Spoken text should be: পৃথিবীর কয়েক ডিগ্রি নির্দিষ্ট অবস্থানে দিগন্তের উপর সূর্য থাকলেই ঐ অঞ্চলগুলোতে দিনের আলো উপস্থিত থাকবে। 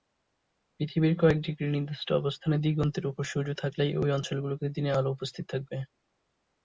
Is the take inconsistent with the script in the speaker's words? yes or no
no